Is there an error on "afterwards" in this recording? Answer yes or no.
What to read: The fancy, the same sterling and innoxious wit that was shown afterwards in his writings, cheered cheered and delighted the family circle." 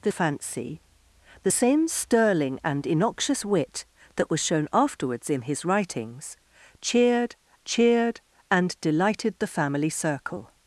no